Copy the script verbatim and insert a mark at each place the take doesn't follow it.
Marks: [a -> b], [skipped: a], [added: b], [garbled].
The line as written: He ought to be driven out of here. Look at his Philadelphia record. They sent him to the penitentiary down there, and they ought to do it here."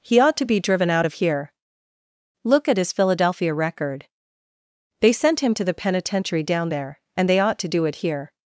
He ought to be driven out of here. Look at his Philadelphia record. They sent him to the penitentiary down there, and they ought to do it here."